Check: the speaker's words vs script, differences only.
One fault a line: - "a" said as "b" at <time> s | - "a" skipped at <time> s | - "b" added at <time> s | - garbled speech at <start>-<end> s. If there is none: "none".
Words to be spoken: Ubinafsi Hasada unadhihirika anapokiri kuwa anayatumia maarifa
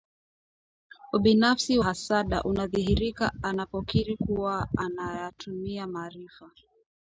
none